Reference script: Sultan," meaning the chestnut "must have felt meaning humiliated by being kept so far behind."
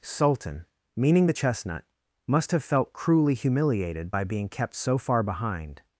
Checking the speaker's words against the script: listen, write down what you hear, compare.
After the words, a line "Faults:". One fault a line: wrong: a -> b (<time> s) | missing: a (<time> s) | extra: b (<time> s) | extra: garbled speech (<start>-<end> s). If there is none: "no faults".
Sultan," meaning the chestnut "must have felt cruelly humiliated by being kept so far behind."
Faults:
wrong: meaning -> cruelly (2.9 s)